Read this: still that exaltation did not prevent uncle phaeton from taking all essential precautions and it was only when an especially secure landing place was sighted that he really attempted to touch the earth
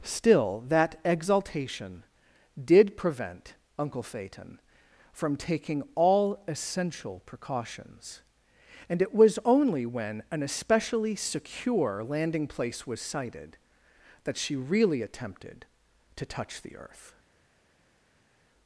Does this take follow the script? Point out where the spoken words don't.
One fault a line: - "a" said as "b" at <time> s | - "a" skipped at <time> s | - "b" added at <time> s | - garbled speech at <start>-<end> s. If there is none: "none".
- "not" skipped at 3.0 s
- "he" said as "she" at 14.4 s